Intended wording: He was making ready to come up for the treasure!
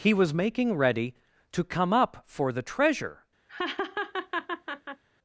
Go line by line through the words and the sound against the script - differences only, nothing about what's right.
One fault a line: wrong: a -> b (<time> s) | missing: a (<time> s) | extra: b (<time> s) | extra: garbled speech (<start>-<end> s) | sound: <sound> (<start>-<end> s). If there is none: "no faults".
sound: laugh (3.5-5.0 s)